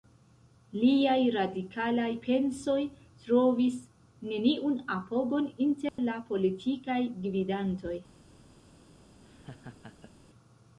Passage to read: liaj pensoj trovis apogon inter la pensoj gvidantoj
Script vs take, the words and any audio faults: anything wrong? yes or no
yes